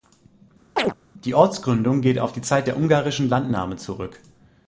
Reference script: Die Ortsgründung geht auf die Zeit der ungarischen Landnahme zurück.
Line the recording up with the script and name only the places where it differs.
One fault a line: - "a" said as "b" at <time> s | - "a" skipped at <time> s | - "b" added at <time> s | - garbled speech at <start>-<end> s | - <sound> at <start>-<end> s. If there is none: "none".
- chirp at 0.8-0.9 s